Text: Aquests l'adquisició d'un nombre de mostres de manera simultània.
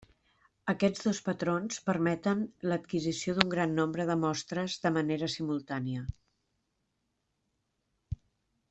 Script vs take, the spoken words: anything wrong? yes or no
yes